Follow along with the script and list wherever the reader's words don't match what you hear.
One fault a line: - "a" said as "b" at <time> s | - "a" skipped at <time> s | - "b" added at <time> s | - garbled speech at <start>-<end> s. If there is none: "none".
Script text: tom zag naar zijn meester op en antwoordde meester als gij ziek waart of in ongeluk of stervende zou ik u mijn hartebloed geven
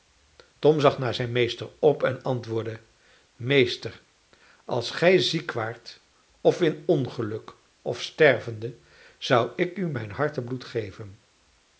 none